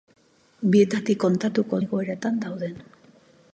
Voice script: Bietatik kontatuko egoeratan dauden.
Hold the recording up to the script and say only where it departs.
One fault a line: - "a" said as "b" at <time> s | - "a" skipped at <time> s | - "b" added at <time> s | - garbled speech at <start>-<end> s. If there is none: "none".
none